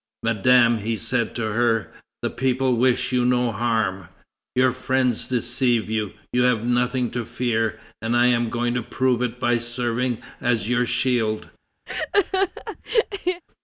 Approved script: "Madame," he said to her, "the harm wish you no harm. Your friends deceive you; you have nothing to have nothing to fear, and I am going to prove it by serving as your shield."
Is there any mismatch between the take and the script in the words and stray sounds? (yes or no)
yes